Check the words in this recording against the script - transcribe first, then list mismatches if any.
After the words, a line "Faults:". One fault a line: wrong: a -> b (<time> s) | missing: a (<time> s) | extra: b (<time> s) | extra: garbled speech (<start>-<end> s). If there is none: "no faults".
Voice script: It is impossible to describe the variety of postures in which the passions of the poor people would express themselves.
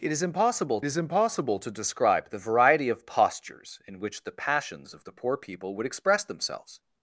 It is impossible is impossible to describe the variety of postures in which the passions of the poor people would express themselves.
Faults:
extra: is impossible (0.9 s)